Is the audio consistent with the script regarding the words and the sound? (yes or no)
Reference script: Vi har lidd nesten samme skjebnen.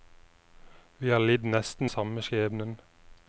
yes